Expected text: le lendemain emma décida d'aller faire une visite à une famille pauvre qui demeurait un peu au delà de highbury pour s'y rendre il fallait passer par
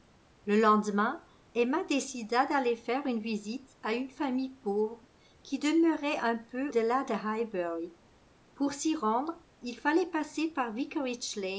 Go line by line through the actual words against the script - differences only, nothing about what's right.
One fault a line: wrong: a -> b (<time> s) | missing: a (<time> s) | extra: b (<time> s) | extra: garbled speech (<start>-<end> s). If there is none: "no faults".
missing: au (6.7 s)